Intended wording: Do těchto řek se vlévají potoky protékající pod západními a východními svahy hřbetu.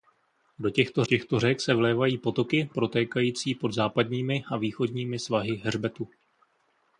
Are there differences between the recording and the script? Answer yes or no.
yes